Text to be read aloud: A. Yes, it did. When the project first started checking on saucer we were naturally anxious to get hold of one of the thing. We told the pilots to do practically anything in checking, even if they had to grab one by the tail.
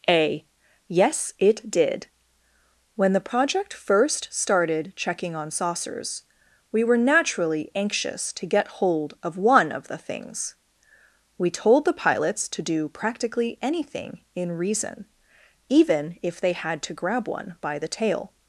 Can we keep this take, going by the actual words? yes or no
no